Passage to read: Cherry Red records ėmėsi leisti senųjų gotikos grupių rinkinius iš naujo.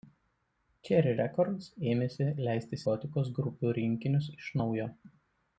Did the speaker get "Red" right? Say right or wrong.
wrong